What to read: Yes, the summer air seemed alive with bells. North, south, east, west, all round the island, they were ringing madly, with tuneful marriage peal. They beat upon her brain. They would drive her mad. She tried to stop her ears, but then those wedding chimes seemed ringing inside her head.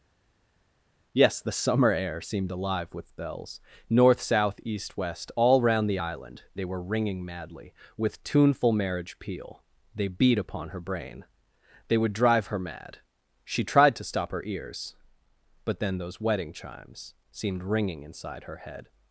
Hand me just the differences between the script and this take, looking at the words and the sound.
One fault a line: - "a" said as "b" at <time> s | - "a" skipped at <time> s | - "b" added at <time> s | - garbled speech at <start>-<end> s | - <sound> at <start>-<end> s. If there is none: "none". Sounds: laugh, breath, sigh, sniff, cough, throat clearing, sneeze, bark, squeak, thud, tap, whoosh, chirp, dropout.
none